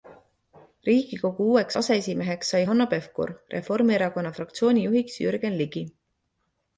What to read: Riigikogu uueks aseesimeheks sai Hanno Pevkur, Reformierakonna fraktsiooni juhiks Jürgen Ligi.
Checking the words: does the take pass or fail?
pass